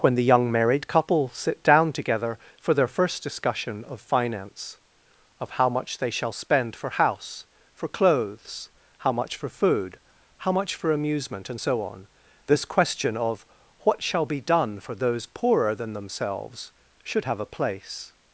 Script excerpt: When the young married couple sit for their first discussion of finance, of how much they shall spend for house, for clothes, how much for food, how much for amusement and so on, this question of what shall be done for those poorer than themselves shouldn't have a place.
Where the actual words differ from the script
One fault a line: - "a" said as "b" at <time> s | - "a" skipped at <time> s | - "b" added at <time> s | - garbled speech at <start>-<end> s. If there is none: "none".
- "down together" added at 1.6 s
- "shouldn't" said as "should" at 17.0 s